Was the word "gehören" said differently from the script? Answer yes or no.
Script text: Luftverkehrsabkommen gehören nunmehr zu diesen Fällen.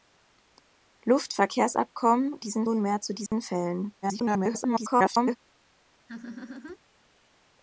yes